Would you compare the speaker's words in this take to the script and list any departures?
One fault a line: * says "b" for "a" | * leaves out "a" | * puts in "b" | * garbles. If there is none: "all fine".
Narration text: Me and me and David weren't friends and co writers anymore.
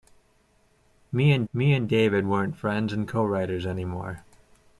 all fine